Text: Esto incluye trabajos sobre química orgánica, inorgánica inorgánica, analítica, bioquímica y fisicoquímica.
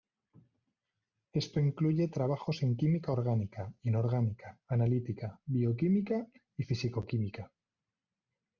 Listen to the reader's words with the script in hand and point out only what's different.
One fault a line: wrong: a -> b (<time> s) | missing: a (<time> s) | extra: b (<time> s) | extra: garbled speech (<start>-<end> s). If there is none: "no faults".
wrong: sobre -> en (2.6 s)
missing: inorgánica (4.6 s)